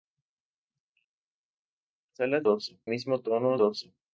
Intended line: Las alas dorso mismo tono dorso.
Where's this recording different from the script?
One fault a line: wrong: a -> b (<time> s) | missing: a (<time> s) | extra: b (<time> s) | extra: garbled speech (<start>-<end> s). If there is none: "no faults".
no faults